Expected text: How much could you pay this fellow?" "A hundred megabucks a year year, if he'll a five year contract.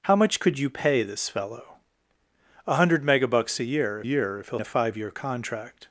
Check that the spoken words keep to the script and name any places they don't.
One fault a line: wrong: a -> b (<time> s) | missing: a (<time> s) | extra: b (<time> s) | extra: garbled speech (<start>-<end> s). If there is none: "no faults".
no faults